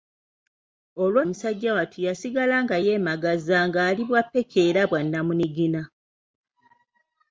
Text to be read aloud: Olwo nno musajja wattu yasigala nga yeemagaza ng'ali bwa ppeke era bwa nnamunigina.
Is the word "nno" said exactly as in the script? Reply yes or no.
no